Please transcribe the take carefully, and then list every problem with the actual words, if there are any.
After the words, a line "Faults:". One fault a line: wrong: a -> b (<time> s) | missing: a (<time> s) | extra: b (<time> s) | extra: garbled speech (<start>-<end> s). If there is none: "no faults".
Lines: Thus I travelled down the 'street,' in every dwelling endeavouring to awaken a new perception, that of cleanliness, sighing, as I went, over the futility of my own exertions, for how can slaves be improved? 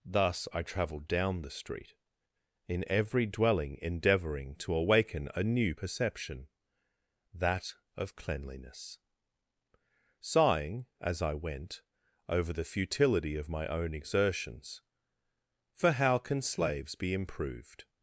Thus I travelled down the 'street,' in every dwelling endeavouring to awaken a new perception, that of cleanliness, sighing, as I went, over the futility of my own exertions, for how can slaves be improved?
Faults:
no faults